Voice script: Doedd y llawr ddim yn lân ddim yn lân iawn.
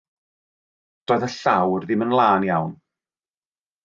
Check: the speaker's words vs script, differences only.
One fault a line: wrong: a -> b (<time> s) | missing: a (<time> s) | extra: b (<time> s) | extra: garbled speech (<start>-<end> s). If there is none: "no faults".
missing: ddim yn lân (2.5 s)